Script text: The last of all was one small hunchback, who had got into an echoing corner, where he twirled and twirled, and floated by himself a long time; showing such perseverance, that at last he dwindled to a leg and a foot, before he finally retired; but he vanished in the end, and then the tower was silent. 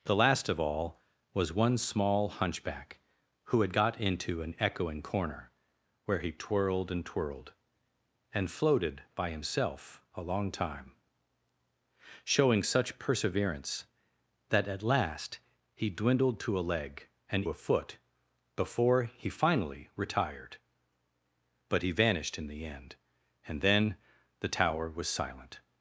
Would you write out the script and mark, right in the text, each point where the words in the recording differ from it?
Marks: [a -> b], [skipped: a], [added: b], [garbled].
The last of all was one small hunchback, who had got into an echoing corner, where he twirled and twirled, and floated by himself a long time; showing such perseverance, that at last he dwindled to a leg and a foot, before he finally retired; but he vanished in the end, and then the tower was silent.